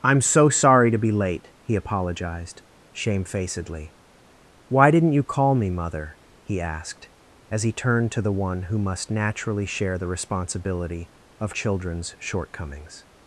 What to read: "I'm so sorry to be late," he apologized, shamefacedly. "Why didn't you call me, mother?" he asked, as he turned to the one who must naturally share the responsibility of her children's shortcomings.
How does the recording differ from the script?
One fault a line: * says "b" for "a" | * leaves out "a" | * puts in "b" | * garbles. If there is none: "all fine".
* leaves out "her"